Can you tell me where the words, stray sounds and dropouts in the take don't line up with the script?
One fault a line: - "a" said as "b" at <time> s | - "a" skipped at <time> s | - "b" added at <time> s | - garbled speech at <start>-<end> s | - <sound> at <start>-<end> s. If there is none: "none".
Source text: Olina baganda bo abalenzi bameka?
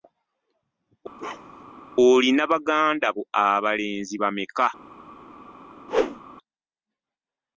- bark at 1.2-1.8 s
- whoosh at 5.9-6.2 s